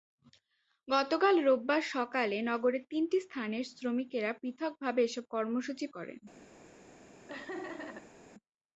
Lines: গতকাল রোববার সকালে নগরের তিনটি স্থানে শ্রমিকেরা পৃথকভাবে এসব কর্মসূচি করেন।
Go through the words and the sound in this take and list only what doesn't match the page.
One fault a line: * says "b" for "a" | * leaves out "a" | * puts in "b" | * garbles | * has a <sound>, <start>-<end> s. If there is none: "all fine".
* has a laugh, 7.3-8.2 s